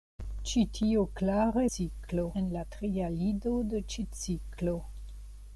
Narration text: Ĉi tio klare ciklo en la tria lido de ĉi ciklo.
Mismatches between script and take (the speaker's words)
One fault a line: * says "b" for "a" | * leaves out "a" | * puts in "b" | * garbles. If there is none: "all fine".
all fine